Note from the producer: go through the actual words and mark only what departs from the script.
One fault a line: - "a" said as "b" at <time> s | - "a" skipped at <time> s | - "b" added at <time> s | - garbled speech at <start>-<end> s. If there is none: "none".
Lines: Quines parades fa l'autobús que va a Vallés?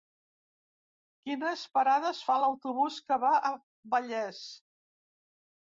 none